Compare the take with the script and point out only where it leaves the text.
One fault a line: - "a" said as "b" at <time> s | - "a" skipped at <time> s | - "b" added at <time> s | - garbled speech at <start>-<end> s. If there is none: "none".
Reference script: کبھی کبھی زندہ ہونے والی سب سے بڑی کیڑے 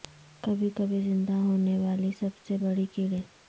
none